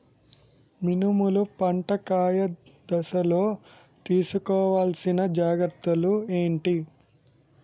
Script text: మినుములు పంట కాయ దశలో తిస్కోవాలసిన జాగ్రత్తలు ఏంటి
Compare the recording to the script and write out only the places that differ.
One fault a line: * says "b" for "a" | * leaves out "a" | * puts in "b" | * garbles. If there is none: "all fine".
all fine